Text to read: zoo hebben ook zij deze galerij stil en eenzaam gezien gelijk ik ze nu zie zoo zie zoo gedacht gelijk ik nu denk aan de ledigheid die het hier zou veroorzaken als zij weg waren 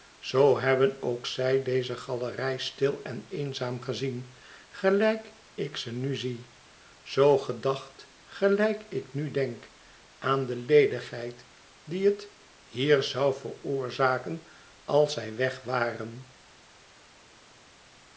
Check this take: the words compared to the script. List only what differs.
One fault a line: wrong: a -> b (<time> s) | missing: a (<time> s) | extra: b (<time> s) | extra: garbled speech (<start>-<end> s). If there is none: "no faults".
missing: zie zoo (7.4 s)